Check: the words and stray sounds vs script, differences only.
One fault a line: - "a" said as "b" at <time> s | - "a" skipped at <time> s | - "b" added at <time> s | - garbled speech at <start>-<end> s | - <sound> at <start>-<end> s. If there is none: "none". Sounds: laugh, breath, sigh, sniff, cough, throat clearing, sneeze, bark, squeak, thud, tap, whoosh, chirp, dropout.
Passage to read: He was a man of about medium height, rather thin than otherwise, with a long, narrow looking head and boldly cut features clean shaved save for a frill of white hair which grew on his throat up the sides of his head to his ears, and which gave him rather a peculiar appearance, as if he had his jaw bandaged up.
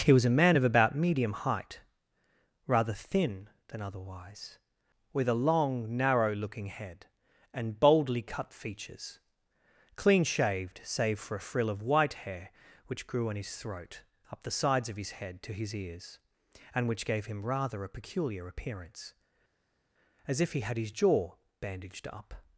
none